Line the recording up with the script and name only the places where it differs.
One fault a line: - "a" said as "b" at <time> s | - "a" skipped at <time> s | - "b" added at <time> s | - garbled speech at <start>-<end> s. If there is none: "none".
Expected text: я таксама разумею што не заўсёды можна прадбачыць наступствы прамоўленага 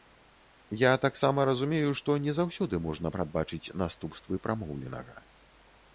none